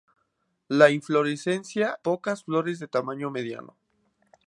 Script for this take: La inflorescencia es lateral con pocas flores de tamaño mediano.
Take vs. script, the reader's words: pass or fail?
fail